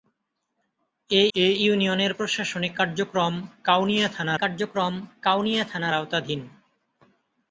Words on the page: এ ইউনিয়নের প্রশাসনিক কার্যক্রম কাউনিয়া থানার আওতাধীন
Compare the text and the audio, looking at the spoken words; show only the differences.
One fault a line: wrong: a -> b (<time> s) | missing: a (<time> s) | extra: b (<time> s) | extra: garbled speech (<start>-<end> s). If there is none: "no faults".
extra: এ (1.3 s)
extra: কার্যক্রম কাউনিয়া থানার (4.4 s)